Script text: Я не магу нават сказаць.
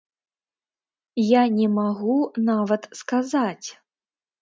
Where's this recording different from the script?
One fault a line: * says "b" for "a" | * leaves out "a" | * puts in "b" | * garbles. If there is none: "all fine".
all fine